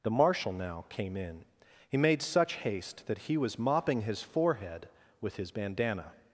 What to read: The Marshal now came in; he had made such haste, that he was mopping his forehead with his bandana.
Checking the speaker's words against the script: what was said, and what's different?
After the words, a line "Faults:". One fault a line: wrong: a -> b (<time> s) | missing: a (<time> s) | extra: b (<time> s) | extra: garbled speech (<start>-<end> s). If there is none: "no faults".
The Marshal now came in; he made such haste, that he was mopping his forehead with his bandana.
Faults:
missing: had (2.0 s)